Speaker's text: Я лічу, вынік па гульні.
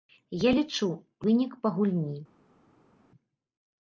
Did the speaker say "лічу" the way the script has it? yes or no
yes